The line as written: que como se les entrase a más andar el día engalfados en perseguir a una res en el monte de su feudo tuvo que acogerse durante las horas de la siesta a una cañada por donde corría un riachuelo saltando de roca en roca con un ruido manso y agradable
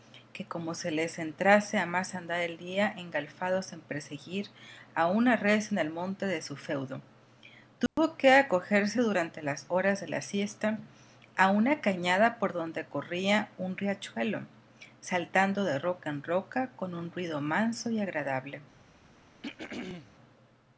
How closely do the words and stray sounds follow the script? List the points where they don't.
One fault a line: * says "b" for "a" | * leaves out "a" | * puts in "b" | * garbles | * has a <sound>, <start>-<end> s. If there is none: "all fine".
* has a dropout, 7.9-8.0 s
* has a throat clearing, 19.4-20.1 s